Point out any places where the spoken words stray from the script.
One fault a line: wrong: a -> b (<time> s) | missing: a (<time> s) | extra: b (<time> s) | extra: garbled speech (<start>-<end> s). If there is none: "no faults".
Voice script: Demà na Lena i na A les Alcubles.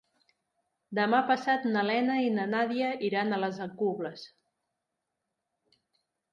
extra: passat (1.3 s)
extra: Nàdia iran (2.5 s)